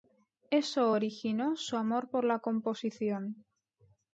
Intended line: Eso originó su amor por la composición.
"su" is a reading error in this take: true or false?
false